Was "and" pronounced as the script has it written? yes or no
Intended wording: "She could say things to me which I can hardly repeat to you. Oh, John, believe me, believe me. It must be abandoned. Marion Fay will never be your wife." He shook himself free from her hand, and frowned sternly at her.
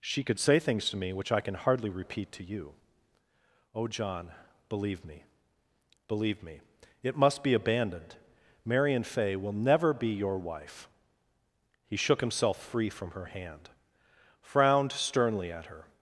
no